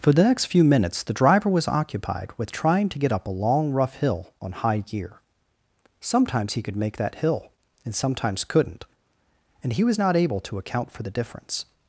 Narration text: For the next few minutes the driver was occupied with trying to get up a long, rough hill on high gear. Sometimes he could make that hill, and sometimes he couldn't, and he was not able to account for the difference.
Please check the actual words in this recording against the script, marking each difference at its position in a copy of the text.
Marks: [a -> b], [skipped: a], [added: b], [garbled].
For the next few minutes the driver was occupied with trying to get up a long, rough hill on high gear. Sometimes he could make that hill, and sometimes [skipped: he] couldn't, and he was not able to account for the difference.